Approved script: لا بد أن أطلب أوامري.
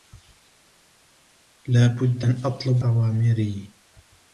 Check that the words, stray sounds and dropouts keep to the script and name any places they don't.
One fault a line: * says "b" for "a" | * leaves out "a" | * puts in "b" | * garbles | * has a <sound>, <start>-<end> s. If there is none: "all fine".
all fine